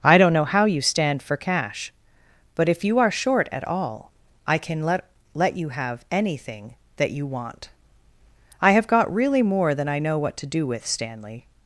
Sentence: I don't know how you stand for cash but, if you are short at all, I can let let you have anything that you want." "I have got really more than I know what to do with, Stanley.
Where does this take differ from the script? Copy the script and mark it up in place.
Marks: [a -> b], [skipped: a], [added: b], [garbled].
I don't know how you stand for cash but, if you are short at all, I can let let you have anything that you want." "I have got really more than I know what to do with, Stanley.